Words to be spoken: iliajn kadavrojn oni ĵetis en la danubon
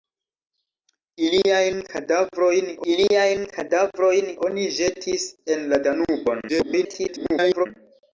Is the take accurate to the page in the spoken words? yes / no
no